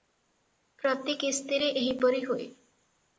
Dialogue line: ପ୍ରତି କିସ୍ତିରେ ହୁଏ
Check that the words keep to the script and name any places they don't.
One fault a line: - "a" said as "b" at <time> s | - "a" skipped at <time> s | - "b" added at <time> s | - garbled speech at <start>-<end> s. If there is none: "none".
- "ଏହିପରି" added at 1.7 s